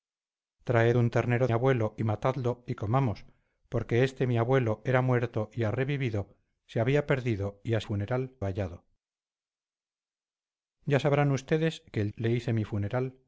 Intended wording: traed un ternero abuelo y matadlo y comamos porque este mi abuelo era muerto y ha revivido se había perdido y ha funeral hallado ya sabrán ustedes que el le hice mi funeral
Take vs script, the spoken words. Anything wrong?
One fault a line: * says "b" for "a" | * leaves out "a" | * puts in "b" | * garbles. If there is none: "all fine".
all fine